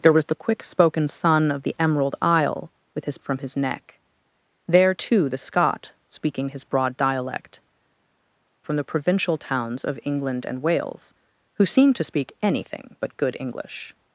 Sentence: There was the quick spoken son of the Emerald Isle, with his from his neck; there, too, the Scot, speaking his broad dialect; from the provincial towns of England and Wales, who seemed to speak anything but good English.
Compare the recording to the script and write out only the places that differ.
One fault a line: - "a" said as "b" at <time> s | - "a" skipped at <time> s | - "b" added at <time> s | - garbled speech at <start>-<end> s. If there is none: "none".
none